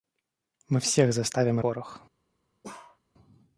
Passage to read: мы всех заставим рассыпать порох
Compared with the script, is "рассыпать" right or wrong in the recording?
wrong